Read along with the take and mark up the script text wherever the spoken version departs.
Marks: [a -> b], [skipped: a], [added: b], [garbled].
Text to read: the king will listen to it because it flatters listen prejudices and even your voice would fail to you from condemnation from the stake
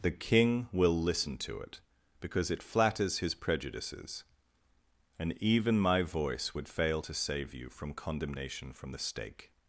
the king will listen to it because it flatters [listen -> his] prejudices and even [your -> my] voice would fail to [added: save] you from condemnation from the stake